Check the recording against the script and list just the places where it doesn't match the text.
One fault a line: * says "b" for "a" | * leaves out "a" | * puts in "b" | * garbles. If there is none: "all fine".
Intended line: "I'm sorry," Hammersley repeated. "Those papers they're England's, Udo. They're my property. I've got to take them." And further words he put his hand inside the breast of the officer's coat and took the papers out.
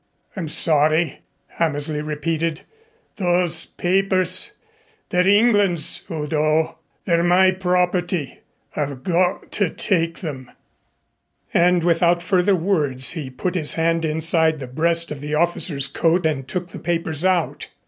* puts in "without"